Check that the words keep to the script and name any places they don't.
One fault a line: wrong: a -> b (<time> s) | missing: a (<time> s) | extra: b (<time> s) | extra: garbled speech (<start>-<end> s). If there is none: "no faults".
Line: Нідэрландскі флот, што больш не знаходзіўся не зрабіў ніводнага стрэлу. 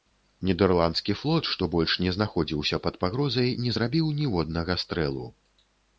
extra: пад пагрозай (2.9 s)